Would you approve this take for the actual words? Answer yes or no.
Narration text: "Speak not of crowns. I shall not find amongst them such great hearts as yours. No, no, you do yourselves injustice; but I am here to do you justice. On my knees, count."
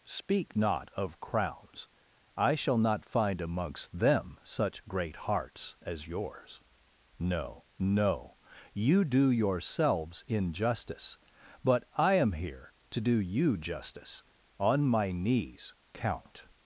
yes